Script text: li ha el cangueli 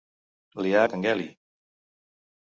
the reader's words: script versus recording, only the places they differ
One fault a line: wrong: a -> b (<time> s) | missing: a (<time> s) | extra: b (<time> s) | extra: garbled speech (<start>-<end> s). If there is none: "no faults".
no faults